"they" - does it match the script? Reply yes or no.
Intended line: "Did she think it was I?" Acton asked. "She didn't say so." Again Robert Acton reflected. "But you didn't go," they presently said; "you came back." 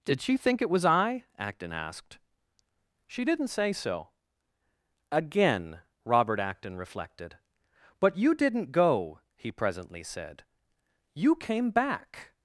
no